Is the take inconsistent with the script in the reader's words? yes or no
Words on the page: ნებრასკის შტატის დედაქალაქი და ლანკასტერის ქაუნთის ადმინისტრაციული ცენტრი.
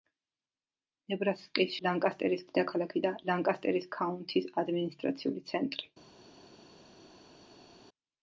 yes